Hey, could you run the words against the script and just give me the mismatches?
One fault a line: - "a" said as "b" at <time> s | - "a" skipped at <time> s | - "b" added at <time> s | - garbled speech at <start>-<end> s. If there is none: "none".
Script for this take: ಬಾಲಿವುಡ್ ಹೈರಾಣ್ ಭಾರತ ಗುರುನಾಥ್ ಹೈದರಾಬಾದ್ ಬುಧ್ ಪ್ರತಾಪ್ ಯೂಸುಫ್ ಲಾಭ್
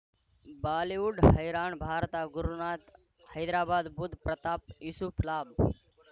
none